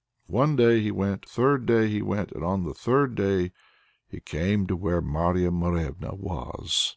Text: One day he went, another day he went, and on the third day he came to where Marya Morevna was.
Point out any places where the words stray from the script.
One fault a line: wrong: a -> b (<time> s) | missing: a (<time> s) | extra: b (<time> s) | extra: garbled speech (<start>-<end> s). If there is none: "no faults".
wrong: another -> third (1.2 s)